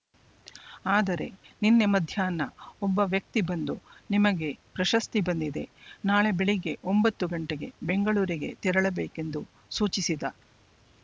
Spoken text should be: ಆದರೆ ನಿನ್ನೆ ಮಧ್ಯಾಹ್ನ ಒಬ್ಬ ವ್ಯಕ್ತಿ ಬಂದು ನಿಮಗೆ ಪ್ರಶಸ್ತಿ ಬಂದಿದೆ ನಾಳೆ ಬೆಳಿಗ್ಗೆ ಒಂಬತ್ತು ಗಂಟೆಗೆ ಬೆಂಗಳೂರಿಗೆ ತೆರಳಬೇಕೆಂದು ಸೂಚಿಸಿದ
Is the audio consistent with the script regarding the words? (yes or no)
yes